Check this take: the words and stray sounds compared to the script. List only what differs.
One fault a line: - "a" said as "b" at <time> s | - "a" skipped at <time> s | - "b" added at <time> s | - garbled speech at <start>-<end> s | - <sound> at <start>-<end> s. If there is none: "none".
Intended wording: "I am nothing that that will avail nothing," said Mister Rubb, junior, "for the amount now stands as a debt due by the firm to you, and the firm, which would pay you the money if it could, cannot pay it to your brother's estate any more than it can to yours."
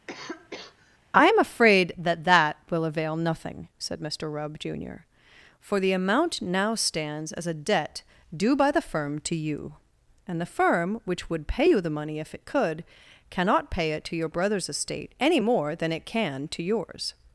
- cough at 0.1-1.0 s
- "nothing" said as "afraid" at 1.4 s